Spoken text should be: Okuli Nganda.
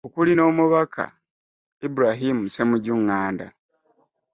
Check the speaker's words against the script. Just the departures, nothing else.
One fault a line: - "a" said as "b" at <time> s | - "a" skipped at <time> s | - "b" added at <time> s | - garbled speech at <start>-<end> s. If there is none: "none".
- "n'Omubaka Ibrahim Ssemujju" added at 0.3 s